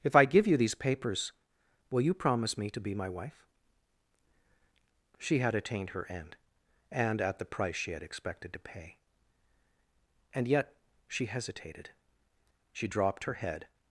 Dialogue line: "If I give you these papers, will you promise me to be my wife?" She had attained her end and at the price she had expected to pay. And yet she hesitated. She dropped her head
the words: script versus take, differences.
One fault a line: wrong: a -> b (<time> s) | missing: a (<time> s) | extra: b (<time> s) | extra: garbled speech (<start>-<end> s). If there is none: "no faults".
no faults